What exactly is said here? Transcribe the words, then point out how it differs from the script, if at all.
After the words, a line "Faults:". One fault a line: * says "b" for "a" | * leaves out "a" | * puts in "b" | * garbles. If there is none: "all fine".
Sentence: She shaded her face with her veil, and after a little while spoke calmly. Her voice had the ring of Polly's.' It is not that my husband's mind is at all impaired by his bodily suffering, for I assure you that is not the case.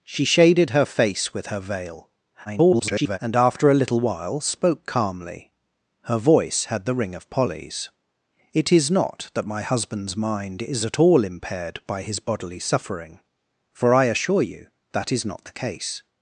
She shaded her face with her veil, [garbled] and after a little while spoke calmly. Her voice had the ring of Polly's.' It is not that my husband's mind is at all impaired by his bodily suffering, for I assure you that is not the case.
Faults:
* garbles